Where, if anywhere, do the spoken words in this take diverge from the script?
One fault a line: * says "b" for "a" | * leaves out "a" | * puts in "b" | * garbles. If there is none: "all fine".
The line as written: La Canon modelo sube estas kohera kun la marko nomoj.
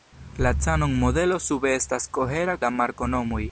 * leaves out "kun"